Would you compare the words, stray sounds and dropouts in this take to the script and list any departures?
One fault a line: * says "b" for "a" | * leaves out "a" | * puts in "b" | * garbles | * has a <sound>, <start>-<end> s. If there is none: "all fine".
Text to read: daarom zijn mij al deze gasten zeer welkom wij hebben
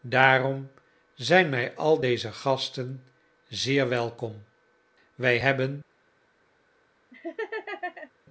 * has a laugh, 7.1-8.1 s